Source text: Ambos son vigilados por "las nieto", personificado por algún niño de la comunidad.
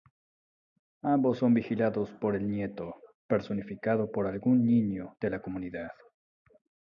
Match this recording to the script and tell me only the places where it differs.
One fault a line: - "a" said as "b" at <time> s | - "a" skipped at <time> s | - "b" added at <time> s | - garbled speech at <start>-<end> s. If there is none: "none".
- "las" said as "el" at 2.4 s